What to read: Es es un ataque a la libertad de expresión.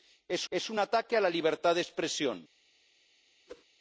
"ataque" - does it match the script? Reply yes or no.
yes